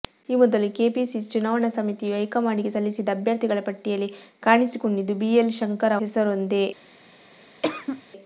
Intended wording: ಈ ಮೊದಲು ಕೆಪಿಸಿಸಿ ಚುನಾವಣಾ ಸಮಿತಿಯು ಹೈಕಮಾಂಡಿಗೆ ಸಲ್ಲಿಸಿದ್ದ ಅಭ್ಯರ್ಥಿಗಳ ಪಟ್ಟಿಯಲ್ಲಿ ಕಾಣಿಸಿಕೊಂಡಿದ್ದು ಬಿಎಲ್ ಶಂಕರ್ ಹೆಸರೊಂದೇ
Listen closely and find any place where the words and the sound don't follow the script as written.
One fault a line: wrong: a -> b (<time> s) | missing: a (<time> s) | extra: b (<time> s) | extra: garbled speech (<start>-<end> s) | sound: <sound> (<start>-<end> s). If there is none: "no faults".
sound: cough (7.6-8.0 s)